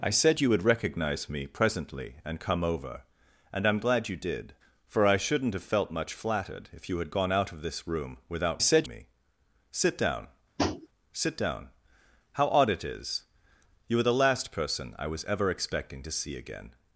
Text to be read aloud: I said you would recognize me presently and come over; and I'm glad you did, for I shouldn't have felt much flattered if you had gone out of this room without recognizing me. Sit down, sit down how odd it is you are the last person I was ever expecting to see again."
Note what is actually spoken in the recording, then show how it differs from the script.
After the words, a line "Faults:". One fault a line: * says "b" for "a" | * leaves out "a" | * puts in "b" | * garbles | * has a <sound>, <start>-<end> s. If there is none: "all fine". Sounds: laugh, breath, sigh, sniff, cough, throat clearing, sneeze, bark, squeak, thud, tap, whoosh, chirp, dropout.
I said you would recognize me presently and come over; and I'm glad you did, for I shouldn't have felt much flattered if you had gone out of this room without said me. Sit down, sit down how odd it is you are the last person I was ever expecting to see again."
Faults:
* says "said" for "recognizing"
* has a tap, 10.6-10.9 s